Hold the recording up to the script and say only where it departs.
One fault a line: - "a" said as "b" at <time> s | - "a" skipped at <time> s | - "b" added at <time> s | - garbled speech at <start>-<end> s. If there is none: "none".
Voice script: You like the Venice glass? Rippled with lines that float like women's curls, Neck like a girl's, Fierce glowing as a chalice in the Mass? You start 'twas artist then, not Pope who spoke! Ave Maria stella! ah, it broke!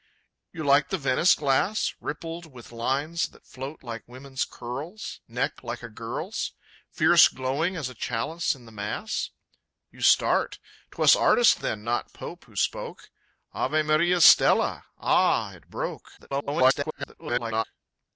- garbled speech at 16.2-17.6 s